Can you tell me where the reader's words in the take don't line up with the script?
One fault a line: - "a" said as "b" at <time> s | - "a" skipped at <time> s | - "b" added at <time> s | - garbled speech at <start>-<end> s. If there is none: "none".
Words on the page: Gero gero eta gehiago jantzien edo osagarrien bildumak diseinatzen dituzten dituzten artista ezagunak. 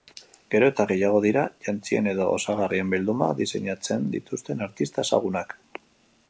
- "gero" skipped at 0.7 s
- "dira" added at 1.2 s
- "dituzten" skipped at 4.7 s